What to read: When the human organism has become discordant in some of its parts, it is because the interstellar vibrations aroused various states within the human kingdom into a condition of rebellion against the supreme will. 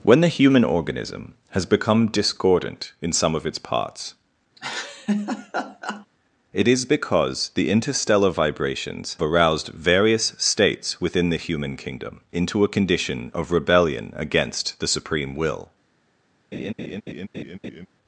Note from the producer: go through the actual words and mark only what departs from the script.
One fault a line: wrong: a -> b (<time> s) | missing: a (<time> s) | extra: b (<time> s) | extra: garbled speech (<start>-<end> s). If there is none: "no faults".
no faults